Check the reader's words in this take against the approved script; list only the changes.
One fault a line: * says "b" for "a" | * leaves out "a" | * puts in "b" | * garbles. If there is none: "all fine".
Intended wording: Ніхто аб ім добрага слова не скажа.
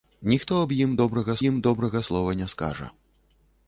* puts in "ім добрага"